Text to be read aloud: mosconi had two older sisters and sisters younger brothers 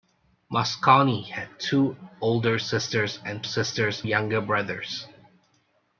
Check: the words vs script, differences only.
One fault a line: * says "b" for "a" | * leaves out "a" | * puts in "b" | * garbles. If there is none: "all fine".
all fine